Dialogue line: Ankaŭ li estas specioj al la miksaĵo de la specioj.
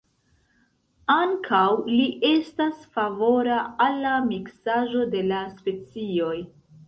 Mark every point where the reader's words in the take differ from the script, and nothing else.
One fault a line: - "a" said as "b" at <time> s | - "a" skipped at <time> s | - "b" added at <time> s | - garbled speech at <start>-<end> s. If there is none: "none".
- "specioj" said as "favora" at 3.0 s